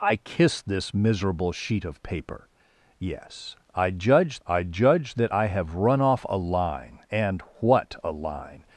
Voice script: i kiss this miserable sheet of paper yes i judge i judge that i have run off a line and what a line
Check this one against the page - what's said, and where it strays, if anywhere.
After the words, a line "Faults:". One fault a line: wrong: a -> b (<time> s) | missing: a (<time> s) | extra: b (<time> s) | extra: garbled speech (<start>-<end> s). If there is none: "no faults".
i kiss this miserable sheet of paper yes i judge i judge that i have run off a line and what a line
Faults:
no faults